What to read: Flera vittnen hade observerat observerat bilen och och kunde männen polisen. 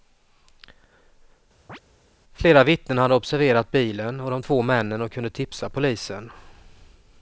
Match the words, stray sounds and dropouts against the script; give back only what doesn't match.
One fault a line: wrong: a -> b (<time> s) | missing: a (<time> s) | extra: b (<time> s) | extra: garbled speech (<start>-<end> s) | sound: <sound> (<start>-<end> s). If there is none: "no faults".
sound: chirp (1.7-1.8 s)
missing: observerat (3.7 s)
extra: de två männen (4.3 s)
wrong: männen -> tipsa (5.3 s)